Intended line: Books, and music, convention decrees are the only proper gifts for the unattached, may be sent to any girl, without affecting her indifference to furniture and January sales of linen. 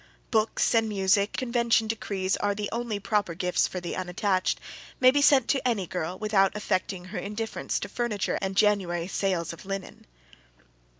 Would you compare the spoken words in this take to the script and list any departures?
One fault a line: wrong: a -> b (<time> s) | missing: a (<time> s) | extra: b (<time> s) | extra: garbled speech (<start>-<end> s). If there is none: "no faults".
no faults